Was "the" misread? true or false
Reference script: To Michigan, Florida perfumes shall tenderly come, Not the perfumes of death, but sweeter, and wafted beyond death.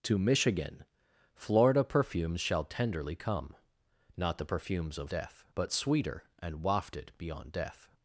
false